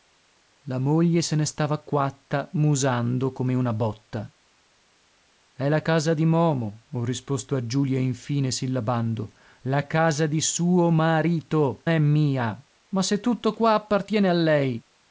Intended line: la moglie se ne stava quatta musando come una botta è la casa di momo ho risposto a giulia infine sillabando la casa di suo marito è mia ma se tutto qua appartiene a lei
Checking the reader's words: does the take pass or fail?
pass